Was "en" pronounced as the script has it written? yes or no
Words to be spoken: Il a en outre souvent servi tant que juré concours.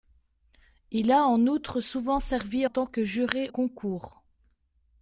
yes